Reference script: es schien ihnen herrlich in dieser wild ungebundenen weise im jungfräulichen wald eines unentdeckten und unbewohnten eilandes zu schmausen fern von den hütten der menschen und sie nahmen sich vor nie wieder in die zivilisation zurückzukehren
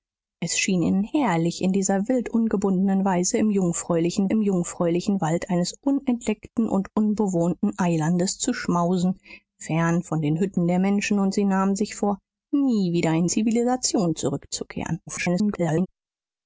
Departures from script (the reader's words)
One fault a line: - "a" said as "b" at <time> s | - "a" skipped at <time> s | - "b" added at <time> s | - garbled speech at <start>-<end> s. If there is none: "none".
- "im jungfräulichen" added at 4.3 s
- "die" skipped at 13.3 s
- garbled speech at 15.1-15.9 s